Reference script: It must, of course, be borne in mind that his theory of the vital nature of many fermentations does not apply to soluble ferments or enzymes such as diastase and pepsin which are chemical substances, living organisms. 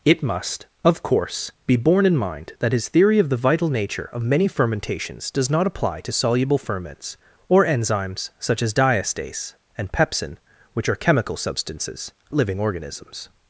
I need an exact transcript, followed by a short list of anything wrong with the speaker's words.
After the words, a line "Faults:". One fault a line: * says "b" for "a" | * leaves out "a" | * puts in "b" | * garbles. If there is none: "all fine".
It must, of course, be borne in mind that his theory of the vital nature of many fermentations does not apply to soluble ferments or enzymes such as diastase and pepsin which are chemical substances, living organisms.
Faults:
all fine